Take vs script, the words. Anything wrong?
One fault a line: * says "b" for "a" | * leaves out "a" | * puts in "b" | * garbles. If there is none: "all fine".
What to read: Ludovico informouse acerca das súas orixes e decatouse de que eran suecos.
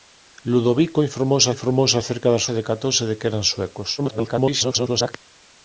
* puts in "informouse"
* leaves out "súas orixes"
* garbles